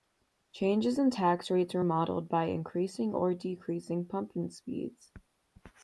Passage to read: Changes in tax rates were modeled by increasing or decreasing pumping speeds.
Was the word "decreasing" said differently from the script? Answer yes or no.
no